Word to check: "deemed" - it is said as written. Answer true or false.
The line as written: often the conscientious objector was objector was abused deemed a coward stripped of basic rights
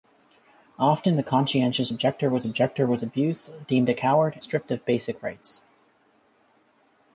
true